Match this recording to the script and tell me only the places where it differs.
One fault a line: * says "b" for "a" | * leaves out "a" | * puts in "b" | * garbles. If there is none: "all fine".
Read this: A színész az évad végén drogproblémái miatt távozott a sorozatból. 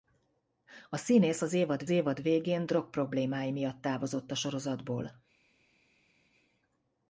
* puts in "évad"